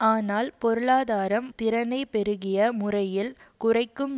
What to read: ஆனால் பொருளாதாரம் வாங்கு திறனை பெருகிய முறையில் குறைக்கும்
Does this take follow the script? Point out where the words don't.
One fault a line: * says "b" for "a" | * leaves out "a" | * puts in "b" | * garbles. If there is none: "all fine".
* leaves out "வாங்கு"